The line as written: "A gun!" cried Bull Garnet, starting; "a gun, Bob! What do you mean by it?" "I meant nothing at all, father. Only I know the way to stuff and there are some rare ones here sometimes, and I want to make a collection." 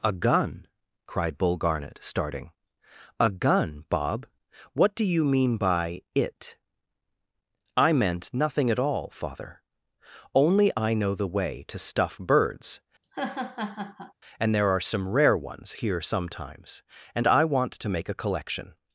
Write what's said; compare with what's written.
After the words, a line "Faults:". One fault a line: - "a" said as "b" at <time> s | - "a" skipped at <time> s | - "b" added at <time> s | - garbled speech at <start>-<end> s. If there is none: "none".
"A gun!" cried Bull Garnet, starting; "a gun, Bob! What do you mean by it?" "I meant nothing at all, father. Only I know the way to stuff birds, and there are some rare ones here sometimes, and I want to make a collection."
Faults:
- "birds" added at 12.2 s